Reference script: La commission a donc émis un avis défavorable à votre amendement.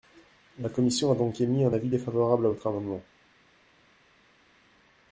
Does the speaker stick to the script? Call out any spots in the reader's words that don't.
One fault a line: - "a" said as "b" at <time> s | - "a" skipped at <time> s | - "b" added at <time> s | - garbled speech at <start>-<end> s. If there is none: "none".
none